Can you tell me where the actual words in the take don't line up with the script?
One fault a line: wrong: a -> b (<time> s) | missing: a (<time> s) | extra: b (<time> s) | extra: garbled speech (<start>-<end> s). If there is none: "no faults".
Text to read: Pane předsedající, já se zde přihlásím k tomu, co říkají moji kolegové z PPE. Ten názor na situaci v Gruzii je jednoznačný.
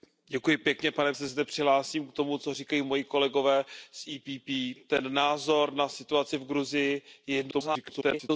missing: předsedající já (1.1 s)
extra: garbled speech (7.5-8.3 s)